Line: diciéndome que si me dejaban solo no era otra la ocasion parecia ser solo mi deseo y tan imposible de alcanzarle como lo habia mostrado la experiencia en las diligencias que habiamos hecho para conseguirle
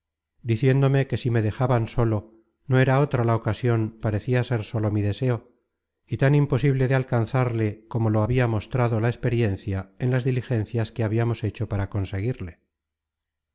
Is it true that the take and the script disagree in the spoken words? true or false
false